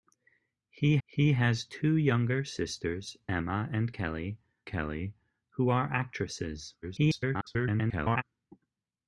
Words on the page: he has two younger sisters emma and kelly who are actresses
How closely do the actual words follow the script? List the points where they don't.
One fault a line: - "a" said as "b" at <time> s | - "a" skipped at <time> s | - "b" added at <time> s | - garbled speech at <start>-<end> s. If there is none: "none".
- "he" added at 1.1 s
- "kelly" added at 4.7 s
- garbled speech at 6.8-8.2 s